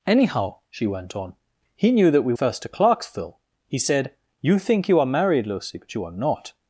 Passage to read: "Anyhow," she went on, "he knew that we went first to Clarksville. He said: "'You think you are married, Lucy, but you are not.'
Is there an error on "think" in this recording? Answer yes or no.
no